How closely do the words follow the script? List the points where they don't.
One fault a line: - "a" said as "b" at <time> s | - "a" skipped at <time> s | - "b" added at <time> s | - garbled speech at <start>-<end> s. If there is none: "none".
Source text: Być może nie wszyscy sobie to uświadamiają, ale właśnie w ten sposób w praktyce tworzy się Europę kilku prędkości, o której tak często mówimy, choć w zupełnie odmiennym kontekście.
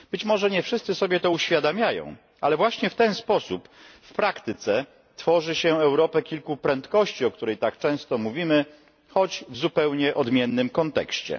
none